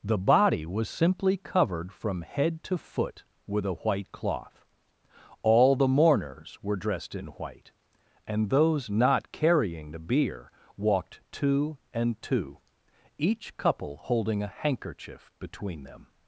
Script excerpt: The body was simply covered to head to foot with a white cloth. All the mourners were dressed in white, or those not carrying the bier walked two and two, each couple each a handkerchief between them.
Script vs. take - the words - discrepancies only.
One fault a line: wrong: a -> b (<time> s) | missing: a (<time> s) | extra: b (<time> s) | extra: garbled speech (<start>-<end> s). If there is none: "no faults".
wrong: to -> from (1.9 s)
wrong: or -> and (8.3 s)
wrong: each -> holding (14.0 s)